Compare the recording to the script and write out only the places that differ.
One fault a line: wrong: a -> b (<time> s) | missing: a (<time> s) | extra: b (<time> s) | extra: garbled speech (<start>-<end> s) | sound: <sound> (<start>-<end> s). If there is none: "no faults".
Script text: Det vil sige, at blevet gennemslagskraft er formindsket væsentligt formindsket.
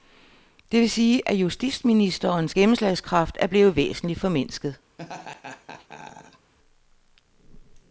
wrong: blevet -> justitsministerens (1.3 s)
wrong: formindsket -> blevet (3.5 s)
sound: laugh (5.0-6.5 s)